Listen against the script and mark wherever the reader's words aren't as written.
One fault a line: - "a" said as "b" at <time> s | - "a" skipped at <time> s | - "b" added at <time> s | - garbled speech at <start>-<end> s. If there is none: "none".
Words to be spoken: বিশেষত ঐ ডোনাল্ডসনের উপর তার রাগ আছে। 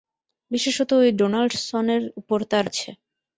- "রাগ" skipped at 2.6 s